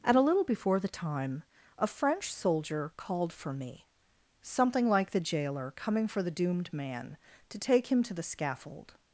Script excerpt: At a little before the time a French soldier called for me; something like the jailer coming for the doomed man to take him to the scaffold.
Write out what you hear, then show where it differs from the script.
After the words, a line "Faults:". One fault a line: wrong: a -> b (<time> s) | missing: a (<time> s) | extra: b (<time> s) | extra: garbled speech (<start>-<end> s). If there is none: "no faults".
At a little before the time a French soldier called for me; something like the jailer coming for the doomed man to take him to the scaffold.
Faults:
no faults